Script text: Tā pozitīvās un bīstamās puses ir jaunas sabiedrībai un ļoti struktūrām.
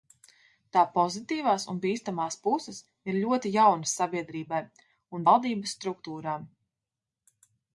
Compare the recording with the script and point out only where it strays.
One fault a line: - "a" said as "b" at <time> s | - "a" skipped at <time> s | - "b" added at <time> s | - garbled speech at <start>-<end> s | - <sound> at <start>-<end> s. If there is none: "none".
- "ļoti" added at 3.2 s
- "ļoti" said as "valdības" at 5.3 s